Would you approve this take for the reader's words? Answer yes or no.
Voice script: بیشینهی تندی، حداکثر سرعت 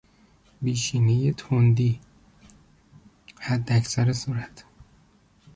yes